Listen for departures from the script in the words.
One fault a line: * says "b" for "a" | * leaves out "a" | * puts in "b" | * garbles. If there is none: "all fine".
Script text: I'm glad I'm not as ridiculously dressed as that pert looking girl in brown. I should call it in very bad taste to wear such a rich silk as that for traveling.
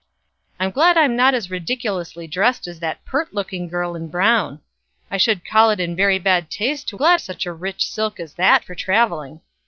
* says "glad" for "wear"